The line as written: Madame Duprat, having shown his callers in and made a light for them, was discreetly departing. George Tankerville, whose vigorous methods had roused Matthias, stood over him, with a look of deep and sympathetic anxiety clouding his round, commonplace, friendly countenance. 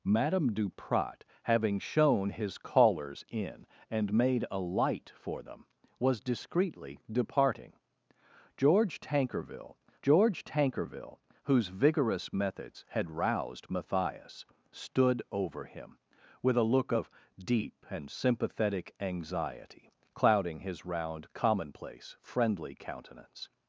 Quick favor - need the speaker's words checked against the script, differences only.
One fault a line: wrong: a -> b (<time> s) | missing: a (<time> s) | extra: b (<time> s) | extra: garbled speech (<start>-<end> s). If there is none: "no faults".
extra: george Tankerville (10.0 s)